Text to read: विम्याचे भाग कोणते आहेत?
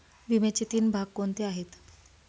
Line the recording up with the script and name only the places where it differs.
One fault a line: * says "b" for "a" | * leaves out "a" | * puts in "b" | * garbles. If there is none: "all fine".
* puts in "तीन"